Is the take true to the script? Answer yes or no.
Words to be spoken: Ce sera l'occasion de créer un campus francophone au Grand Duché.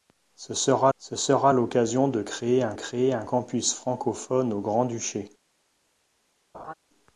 no